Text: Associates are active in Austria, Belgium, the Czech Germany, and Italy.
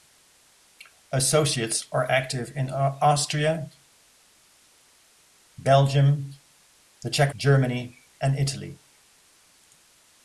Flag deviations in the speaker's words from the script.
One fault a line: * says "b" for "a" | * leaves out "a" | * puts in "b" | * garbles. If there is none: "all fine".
all fine